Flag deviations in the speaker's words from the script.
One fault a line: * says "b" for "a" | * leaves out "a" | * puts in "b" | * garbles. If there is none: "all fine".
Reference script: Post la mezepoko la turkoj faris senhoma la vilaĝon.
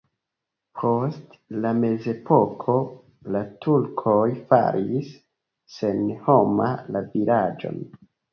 all fine